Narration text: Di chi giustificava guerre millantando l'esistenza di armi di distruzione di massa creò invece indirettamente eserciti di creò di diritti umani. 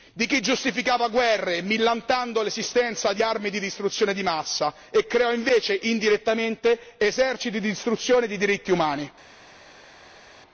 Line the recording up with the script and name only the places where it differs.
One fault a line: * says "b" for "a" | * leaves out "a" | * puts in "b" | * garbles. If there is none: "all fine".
* puts in "e"
* says "distruzione" for "creò"